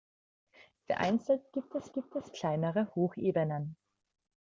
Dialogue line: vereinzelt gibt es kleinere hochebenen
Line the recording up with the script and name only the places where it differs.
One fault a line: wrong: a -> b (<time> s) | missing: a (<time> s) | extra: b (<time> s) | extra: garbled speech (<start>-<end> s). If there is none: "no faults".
extra: gibt es (1.9 s)